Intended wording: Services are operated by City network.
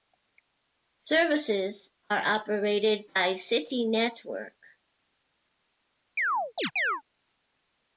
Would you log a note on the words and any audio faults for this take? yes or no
yes